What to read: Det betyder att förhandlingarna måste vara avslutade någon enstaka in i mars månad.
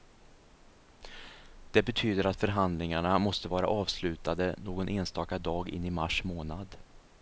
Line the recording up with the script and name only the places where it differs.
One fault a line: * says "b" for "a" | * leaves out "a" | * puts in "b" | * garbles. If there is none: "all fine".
* puts in "dag"